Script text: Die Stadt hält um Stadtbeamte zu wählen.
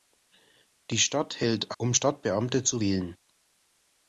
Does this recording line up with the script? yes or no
yes